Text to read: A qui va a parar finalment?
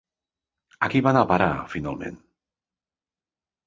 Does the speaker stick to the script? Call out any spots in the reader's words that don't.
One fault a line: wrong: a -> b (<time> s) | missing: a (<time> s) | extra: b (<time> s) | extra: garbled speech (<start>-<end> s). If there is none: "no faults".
extra: anar (1.1 s)